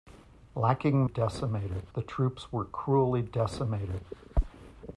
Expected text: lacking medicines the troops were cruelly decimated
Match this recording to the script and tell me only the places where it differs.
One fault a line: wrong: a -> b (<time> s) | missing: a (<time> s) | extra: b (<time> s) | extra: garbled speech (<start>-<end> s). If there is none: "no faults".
wrong: medicines -> decimated (1.0 s)